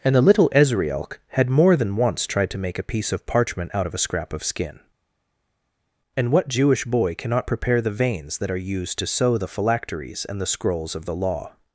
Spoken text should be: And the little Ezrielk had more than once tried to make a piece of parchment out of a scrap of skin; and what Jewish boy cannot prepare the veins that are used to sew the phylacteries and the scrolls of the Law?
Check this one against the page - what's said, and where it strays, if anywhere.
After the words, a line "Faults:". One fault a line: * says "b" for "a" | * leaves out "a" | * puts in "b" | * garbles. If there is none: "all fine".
And the little Ezrielk had more than once tried to make a piece of parchment out of a scrap of skin; and what Jewish boy cannot prepare the veins that are used to sew the phylacteries and the scrolls of the Law?
Faults:
all fine